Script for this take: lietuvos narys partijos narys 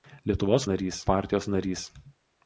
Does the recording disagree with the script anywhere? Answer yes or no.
no